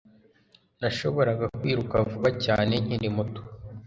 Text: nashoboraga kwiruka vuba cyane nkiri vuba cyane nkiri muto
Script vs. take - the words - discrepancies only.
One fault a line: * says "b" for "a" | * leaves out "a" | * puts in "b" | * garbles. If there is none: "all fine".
* leaves out "vuba cyane nkiri"